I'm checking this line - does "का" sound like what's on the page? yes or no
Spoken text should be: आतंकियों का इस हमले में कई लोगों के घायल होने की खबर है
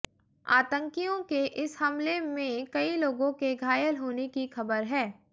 no